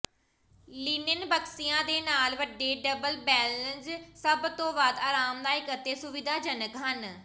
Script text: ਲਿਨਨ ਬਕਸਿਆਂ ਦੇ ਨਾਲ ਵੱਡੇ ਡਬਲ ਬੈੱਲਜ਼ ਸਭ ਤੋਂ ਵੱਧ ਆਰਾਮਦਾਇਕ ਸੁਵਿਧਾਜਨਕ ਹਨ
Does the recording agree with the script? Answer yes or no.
no